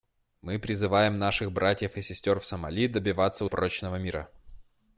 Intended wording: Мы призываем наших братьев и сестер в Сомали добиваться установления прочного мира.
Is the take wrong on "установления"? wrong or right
wrong